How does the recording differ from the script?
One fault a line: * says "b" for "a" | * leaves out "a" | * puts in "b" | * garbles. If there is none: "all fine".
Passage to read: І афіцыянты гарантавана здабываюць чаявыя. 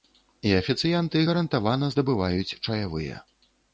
all fine